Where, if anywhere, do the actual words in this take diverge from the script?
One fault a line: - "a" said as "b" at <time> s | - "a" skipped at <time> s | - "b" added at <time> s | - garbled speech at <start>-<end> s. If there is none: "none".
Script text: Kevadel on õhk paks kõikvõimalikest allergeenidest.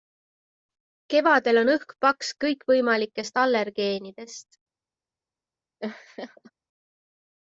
none